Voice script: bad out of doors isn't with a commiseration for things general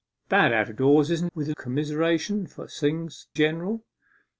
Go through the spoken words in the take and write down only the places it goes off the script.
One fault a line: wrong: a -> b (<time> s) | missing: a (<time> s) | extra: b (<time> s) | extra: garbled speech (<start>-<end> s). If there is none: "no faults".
no faults